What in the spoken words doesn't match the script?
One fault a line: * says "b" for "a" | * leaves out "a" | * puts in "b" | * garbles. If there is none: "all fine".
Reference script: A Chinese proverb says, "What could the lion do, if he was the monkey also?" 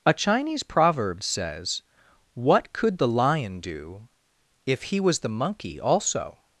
all fine